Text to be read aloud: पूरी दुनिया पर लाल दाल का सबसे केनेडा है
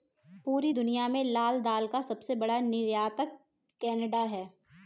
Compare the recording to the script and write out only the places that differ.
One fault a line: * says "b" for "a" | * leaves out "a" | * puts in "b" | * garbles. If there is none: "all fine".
* says "में" for "पर"
* puts in "बड़ा निर्यातक"